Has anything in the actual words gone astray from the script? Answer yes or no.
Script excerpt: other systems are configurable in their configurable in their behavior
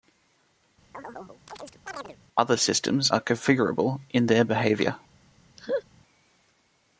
yes